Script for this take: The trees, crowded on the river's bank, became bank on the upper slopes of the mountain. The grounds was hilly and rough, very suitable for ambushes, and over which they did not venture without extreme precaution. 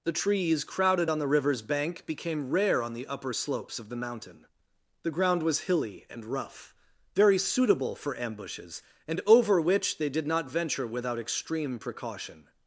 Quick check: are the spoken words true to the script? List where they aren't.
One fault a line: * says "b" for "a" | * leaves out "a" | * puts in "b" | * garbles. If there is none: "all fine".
* says "rare" for "bank"
* says "ground" for "grounds"